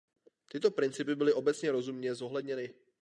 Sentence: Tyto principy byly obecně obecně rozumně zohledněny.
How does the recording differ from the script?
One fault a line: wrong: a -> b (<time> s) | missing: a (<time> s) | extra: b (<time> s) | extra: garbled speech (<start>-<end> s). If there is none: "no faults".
missing: obecně (1.7 s)